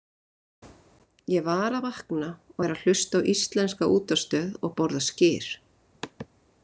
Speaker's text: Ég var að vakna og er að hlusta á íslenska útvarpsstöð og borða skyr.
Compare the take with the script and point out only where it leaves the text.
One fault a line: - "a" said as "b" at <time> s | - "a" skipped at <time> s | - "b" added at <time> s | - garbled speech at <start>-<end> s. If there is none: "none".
none